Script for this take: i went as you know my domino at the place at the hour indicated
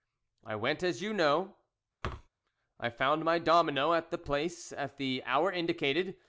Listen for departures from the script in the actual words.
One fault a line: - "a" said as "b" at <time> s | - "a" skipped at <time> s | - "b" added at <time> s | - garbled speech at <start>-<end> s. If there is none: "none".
- "i found" added at 2.8 s